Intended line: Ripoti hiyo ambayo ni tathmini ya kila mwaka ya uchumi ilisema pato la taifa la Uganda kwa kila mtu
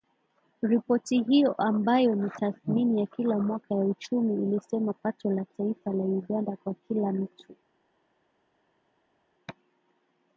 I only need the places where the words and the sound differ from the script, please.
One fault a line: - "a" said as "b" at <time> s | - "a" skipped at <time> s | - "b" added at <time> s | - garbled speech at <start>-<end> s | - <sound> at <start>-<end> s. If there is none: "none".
none